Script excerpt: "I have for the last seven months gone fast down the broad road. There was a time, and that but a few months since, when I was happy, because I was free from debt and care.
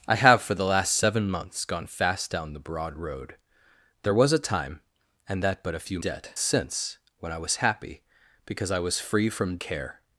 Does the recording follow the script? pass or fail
fail